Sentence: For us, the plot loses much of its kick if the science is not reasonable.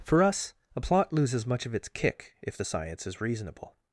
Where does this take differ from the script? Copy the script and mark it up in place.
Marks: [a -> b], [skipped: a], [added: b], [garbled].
For us, [the -> a] plot loses much of its kick if the science is [skipped: not] reasonable.